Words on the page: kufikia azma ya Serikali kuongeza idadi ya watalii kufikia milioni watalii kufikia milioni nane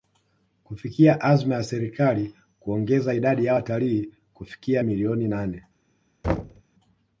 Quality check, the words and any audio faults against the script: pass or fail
fail